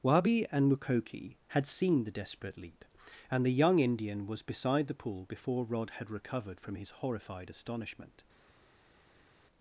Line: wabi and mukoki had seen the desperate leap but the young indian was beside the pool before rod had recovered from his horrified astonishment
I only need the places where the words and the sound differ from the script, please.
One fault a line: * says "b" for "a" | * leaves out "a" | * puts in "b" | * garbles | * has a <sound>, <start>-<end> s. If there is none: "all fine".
* says "and" for "but"